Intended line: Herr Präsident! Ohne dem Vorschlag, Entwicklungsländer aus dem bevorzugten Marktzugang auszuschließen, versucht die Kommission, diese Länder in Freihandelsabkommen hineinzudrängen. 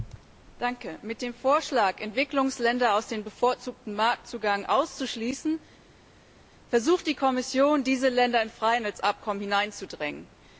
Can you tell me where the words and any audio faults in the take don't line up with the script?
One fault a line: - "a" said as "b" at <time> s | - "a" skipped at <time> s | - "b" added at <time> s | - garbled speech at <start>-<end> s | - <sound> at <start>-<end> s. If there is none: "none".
- "Ohne" said as "Mit" at 1.0 s